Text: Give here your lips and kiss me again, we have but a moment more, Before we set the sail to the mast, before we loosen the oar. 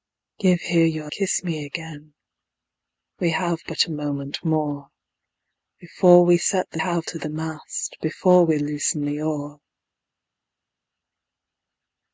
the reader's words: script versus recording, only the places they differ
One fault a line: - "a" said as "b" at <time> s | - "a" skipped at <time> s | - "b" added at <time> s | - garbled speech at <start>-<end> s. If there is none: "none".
- "lips and" skipped at 1.1 s
- "sail" said as "have" at 6.8 s